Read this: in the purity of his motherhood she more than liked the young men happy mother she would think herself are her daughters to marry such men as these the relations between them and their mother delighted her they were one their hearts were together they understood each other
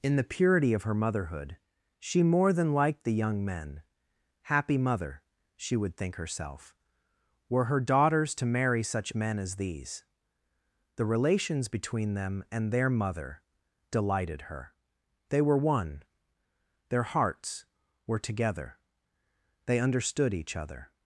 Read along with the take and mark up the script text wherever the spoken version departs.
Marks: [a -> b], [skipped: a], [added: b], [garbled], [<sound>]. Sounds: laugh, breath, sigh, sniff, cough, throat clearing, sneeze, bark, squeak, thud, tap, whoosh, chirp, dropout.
in the purity of [his -> her] motherhood she more than liked the young men happy mother she would think herself [are -> were] her daughters to marry such men as these the relations between them and their mother delighted her they were one their hearts were together they understood each other